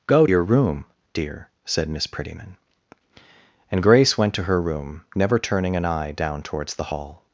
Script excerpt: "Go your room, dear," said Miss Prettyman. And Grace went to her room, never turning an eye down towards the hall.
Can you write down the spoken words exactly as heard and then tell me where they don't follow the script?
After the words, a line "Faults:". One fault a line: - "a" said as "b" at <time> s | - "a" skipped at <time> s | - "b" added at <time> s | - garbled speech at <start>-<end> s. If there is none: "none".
"Go your room, dear," said Miss Prettyman. And Grace went to her room, never turning an eye down towards the hall.
Faults:
none